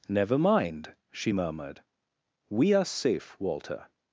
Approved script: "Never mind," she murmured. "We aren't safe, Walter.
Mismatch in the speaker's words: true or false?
true